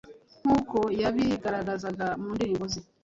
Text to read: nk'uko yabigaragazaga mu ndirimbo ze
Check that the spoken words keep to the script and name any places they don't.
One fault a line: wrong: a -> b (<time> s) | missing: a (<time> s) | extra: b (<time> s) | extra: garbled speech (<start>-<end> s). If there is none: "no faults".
no faults